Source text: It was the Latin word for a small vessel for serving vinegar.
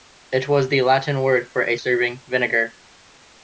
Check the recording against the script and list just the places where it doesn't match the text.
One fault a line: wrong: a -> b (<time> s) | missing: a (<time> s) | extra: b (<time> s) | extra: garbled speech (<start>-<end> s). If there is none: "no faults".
missing: small vessel for (1.8 s)